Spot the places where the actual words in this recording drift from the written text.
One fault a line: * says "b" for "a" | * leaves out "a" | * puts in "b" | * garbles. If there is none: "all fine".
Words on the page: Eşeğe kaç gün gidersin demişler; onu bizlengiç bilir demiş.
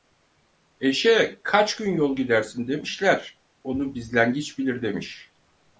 * puts in "yol"